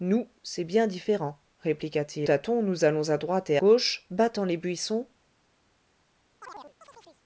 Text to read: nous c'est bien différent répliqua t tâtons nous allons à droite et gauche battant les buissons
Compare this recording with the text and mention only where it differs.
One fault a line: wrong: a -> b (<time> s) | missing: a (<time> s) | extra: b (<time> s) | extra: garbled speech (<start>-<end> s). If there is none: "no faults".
no faults